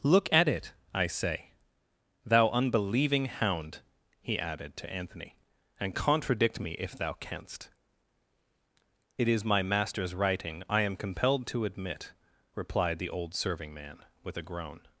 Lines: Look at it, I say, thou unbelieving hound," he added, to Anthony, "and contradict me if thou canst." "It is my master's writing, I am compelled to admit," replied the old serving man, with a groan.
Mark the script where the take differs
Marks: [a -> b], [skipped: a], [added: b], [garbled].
Look at it, I say, thou unbelieving hound," he added, to Anthony, "and contradict me if thou canst." "It is my master's writing, I am compelled to admit," replied the old serving man, with a groan.